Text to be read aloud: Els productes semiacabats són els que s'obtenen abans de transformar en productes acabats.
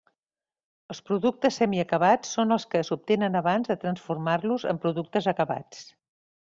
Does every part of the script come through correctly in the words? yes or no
no